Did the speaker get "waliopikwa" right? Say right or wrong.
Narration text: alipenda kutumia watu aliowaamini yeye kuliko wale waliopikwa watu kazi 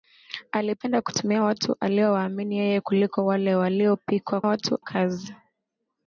right